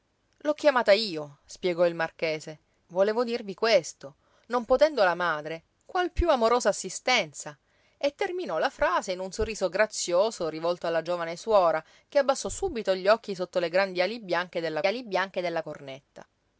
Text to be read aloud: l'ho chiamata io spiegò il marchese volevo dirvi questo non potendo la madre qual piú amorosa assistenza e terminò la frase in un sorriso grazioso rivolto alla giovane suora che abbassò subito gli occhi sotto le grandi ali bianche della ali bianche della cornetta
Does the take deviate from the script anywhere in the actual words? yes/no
no